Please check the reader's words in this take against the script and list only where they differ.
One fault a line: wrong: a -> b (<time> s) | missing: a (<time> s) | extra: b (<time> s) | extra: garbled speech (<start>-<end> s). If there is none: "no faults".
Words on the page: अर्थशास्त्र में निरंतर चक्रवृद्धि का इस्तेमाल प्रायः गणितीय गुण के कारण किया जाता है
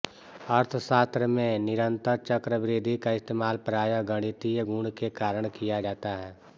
no faults